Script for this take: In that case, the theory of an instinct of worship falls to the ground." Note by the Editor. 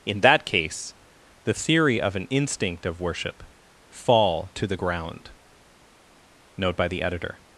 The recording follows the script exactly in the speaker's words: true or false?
false